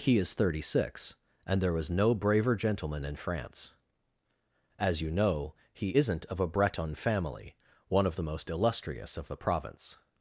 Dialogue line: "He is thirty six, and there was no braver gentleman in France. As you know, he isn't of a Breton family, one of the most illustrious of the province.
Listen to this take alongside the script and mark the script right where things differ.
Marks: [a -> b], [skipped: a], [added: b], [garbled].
"He is thirty six, and there was no braver gentleman in France. As you know, he isn't of a Breton family, one of the most illustrious of the province.